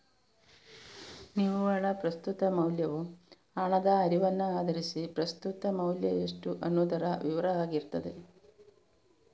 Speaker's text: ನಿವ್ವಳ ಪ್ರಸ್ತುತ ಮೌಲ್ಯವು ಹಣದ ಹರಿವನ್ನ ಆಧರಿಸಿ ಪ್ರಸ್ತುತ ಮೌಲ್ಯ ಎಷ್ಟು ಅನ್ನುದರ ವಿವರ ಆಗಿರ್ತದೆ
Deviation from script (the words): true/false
false